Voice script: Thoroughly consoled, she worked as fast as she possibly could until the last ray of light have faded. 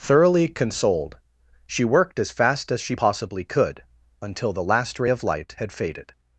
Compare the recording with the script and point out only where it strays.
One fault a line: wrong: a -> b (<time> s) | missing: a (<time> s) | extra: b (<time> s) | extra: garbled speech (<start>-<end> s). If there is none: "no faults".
wrong: have -> had (5.6 s)